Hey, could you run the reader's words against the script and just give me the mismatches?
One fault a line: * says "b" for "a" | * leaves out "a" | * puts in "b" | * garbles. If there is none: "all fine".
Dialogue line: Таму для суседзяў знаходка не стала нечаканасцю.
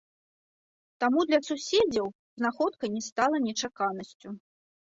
all fine